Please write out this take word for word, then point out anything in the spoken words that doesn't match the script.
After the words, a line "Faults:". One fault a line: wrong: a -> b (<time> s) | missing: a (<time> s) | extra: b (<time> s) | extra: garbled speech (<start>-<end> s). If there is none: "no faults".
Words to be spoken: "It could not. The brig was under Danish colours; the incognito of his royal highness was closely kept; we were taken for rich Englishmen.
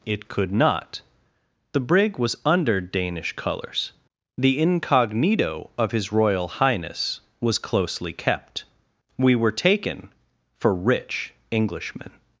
"It could not. The brig was under Danish colours; the incognito of his royal highness was closely kept; we were taken for rich Englishmen.
Faults:
no faults